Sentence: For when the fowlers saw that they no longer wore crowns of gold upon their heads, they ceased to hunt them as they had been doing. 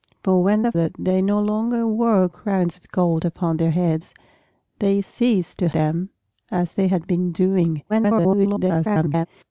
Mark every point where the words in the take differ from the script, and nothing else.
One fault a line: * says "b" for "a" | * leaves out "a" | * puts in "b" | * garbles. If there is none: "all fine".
* leaves out "fowlers saw"
* leaves out "hunt"
* garbles